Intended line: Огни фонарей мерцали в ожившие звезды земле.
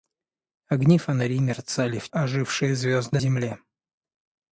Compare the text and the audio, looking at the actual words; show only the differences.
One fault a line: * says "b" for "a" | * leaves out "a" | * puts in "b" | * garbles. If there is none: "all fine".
all fine